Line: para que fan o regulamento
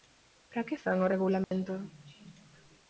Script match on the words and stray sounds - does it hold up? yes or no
no